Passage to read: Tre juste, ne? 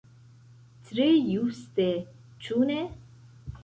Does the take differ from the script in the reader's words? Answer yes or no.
yes